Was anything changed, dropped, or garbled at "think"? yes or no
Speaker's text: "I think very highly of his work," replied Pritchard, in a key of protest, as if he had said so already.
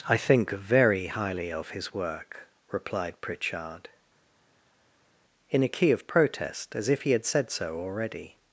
no